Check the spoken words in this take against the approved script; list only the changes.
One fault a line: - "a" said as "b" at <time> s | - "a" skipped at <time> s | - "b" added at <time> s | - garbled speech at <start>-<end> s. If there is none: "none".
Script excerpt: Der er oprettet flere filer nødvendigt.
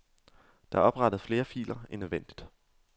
- "end" added at 1.9 s